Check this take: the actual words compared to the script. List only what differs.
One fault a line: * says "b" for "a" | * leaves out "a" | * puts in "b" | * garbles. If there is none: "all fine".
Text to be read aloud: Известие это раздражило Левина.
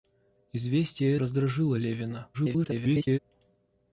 * leaves out "это"
* garbles